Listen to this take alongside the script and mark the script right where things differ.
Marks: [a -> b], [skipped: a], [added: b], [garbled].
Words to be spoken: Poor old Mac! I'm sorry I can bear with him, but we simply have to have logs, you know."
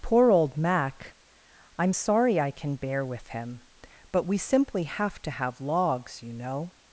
Poor old Mac! I'm sorry I can bear with him, but we simply have to have logs, you know."